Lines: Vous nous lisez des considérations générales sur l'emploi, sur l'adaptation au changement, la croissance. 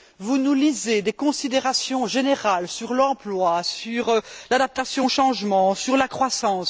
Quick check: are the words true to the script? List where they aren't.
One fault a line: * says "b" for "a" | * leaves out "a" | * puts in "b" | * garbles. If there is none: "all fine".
* puts in "sur"